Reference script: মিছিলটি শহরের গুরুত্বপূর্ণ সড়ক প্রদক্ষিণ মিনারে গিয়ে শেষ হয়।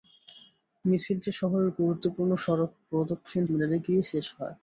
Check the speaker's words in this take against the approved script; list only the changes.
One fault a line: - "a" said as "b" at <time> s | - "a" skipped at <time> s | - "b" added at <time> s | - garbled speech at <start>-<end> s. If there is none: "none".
none